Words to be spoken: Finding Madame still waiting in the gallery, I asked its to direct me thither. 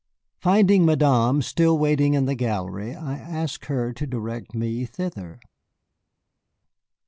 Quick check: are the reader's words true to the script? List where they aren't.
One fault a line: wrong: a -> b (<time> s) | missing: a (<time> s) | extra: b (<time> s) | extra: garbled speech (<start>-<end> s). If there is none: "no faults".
wrong: its -> her (3.6 s)